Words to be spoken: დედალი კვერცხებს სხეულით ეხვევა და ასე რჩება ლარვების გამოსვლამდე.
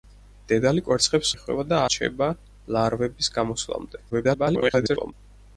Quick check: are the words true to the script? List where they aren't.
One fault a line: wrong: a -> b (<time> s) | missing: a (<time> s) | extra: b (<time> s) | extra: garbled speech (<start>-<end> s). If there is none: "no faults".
missing: სხეულით (1.3 s)
missing: ასე (1.8 s)
extra: garbled speech (4.1-5.1 s)